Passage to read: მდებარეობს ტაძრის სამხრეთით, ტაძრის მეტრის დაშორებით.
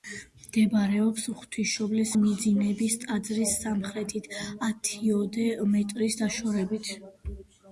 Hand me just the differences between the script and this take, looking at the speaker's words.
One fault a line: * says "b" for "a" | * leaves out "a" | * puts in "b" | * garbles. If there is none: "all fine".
* puts in "ღვთისმშობლის მიძინების"
* says "ათიოდე" for "ტაძრის"